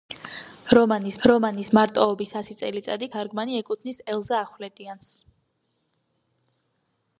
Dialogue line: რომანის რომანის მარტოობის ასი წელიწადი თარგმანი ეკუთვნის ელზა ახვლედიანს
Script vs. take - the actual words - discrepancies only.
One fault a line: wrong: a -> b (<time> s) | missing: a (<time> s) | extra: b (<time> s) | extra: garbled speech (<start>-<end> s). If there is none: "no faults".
no faults